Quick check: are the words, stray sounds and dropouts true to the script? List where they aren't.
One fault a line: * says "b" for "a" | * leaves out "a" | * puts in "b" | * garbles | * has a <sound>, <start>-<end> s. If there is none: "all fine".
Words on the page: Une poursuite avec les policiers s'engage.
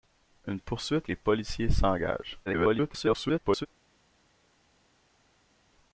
* leaves out "avec"
* garbles